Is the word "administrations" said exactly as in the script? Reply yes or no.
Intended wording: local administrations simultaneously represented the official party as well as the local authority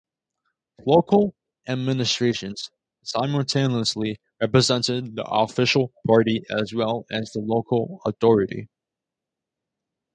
yes